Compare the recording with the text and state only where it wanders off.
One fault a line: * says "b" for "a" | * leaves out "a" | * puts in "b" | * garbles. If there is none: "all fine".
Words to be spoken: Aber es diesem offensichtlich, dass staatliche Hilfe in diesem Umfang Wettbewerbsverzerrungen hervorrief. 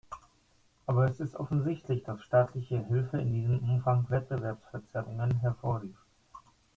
* says "ist" for "diesem"